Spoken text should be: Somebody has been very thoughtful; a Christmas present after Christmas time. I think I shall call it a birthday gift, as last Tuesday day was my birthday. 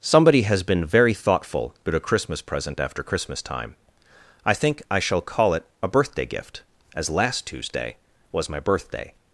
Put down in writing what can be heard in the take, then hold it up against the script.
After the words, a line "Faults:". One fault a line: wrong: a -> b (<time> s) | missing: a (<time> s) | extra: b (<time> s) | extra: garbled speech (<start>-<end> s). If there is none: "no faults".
Somebody has been very thoughtful; about a Christmas present after Christmas time. I think I shall call it a birthday gift, as last Tuesday was my birthday.
Faults:
extra: about (1.9 s)
missing: day (8.0 s)